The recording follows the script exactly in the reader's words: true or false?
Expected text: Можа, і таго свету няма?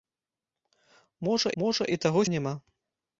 false